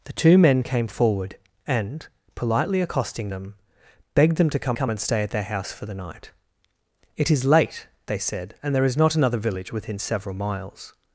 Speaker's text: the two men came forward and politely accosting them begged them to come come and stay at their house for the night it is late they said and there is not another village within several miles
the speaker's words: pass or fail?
pass